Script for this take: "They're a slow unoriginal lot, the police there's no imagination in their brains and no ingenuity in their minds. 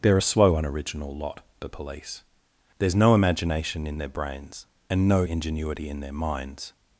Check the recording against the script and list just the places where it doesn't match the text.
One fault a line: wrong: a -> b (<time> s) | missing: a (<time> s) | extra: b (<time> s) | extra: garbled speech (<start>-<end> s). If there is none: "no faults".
no faults